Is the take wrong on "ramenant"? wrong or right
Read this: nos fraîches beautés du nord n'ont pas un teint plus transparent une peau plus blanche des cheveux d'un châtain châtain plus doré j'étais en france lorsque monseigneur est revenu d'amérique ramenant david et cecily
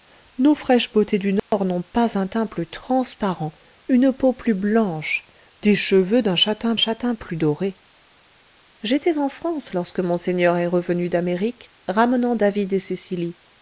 right